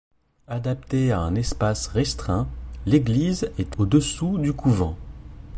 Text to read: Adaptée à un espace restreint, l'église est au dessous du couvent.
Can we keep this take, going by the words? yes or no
yes